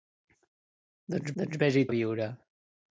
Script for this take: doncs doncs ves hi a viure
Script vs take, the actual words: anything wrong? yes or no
no